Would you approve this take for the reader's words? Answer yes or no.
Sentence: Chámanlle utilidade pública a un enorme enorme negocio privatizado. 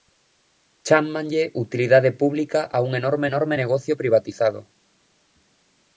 yes